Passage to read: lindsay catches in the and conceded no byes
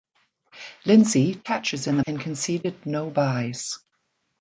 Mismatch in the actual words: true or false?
false